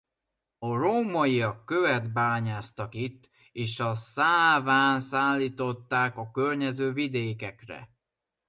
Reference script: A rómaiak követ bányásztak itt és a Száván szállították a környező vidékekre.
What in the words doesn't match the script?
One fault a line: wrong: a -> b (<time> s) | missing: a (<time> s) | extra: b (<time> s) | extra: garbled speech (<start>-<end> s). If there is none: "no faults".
no faults